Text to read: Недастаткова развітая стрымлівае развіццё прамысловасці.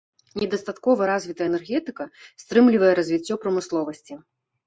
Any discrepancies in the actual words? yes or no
yes